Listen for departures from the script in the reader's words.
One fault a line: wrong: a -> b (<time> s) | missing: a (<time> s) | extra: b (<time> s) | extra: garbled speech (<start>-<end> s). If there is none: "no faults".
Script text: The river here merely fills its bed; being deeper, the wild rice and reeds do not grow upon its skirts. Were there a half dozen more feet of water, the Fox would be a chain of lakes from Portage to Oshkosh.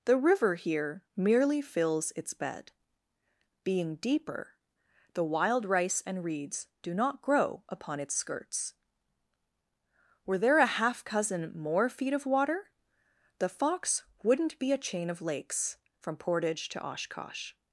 wrong: dozen -> cousin (11.0 s)
wrong: would -> wouldn't (14.2 s)